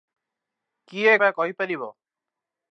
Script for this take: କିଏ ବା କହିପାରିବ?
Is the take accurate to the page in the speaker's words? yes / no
yes